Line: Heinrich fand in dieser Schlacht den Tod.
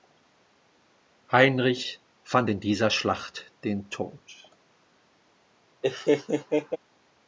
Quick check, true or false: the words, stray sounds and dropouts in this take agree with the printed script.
false